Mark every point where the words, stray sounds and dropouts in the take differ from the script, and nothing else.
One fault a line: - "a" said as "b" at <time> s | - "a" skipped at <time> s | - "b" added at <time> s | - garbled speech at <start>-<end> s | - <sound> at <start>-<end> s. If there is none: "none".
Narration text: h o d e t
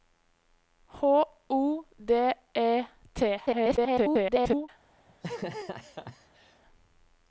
- garbled speech at 3.5-4.7 s
- laugh at 5.1-6.6 s